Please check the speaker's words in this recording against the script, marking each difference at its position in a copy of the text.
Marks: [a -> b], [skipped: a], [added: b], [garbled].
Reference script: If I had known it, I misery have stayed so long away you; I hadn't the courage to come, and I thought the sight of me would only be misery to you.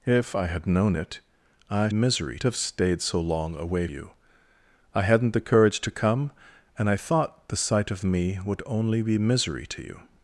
If I had known it, I misery have stayed so long away you; I hadn't the courage to come, and I thought the sight of me would only be misery to you.